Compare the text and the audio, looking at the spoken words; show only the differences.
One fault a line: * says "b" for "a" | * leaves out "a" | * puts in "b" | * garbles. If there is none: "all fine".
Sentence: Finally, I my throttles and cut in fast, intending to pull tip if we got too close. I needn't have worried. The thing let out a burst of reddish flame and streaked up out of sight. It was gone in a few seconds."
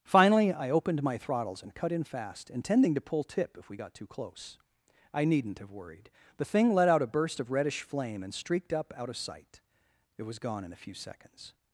* puts in "opened"